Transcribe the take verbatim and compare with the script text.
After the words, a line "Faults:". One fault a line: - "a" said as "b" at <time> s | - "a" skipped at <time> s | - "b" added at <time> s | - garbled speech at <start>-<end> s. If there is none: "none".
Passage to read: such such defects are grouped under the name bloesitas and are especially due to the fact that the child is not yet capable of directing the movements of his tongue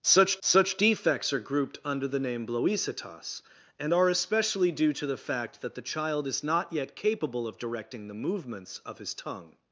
such such defects are grouped under the name bloesitas and are especially due to the fact that the child is not yet capable of directing the movements of his tongue
Faults:
none